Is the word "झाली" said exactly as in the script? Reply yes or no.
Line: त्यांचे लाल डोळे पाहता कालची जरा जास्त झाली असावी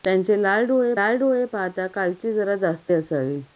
no